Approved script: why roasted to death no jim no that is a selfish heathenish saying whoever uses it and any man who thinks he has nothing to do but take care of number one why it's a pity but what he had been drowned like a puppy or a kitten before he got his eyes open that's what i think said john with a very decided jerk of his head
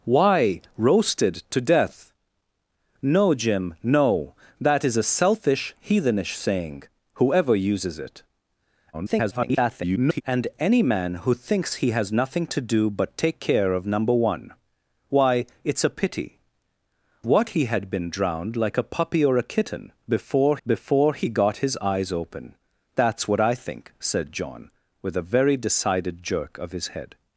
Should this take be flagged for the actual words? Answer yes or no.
yes